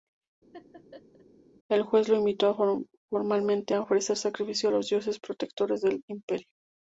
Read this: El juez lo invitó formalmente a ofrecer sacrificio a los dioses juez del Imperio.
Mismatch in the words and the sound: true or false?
true